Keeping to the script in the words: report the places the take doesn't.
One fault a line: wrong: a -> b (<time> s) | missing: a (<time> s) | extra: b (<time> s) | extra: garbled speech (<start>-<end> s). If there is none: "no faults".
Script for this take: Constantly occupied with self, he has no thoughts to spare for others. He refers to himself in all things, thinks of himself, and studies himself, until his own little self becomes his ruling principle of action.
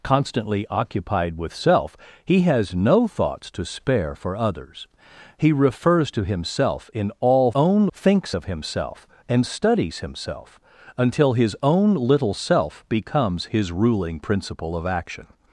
wrong: things -> own (7.5 s)